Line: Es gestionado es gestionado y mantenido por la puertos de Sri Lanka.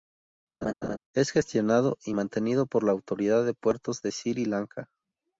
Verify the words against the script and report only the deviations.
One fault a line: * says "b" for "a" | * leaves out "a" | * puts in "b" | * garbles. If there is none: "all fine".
* leaves out "es gestionado"
* puts in "autoridad de"